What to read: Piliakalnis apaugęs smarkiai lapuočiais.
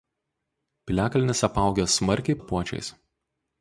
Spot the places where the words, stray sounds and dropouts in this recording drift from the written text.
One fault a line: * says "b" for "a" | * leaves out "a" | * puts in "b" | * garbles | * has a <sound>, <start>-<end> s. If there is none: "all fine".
all fine